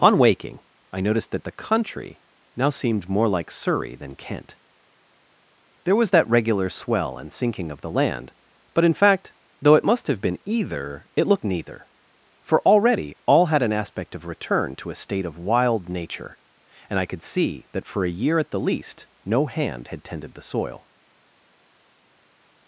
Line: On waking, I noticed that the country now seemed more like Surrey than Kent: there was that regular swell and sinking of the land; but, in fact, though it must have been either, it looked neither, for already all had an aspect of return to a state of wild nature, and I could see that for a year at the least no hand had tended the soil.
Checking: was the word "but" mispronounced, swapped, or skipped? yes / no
no